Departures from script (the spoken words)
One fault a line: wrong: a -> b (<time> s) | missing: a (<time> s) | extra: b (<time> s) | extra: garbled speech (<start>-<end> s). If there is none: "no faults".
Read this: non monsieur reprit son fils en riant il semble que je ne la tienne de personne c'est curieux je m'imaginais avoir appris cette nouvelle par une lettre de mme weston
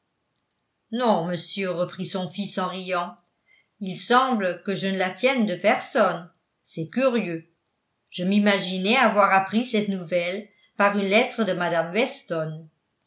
no faults